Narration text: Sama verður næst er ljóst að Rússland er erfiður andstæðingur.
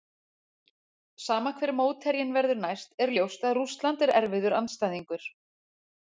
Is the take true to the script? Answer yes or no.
no